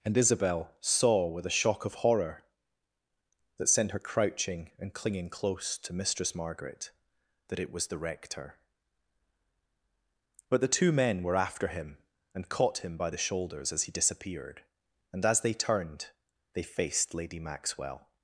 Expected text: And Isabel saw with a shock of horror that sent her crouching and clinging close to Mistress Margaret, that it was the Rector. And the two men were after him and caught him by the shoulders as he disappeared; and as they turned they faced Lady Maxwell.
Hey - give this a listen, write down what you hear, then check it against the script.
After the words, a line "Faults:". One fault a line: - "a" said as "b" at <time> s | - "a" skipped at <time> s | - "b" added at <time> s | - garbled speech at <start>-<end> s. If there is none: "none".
And Isabel saw with a shock of horror that sent her crouching and clinging close to Mistress Margaret, that it was the Rector. But the two men were after him and caught him by the shoulders as he disappeared; and as they turned they faced Lady Maxwell.
Faults:
- "And" said as "But" at 10.5 s